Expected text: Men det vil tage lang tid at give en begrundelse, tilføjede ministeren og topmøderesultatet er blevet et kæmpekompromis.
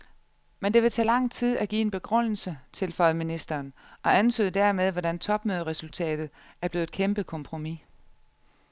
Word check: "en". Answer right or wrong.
right